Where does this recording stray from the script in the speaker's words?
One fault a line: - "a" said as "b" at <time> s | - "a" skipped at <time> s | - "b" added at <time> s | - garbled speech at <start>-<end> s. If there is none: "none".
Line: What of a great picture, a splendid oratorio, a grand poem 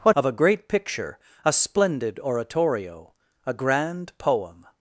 none